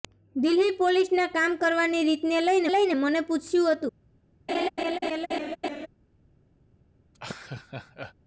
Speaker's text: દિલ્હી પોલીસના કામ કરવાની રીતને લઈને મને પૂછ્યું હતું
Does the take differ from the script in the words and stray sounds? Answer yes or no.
yes